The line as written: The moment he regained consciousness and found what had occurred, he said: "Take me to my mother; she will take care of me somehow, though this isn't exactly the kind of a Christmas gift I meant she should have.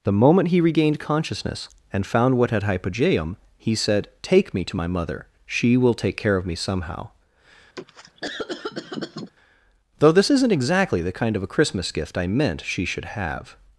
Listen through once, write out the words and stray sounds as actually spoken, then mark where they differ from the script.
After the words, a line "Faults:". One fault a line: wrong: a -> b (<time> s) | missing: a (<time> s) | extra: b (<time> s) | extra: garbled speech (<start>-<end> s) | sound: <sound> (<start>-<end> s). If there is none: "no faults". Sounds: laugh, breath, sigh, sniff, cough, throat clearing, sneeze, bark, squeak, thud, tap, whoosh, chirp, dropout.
The moment he regained consciousness and found what had hypogeum, he said: "Take me to my mother; she will take care of me somehow, though this isn't exactly the kind of a Christmas gift I meant she should have.
Faults:
wrong: occurred -> hypogeum (2.6 s)
sound: cough (7.8-9.3 s)